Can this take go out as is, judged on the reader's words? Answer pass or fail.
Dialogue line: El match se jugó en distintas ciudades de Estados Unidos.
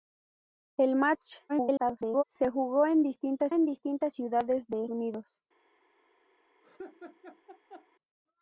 fail